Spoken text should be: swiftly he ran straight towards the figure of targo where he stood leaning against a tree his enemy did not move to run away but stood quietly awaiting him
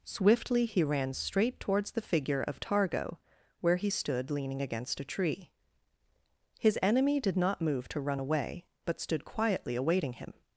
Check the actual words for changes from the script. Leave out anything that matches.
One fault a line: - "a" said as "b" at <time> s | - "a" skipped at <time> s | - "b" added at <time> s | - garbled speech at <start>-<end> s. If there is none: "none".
none